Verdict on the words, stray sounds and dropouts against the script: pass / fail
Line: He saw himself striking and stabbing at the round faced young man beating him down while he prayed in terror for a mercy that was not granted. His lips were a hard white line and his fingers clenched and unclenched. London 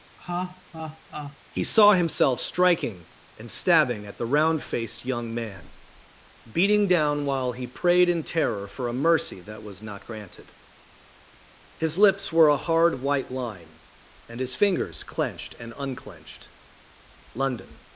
fail